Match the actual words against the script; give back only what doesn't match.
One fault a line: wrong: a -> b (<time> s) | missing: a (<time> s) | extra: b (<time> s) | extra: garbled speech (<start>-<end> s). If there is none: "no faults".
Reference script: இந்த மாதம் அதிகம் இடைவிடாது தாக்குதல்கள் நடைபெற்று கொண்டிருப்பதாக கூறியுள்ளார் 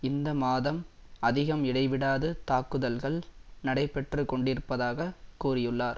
no faults